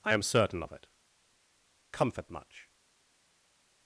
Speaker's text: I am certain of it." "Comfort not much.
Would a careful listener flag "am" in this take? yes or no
no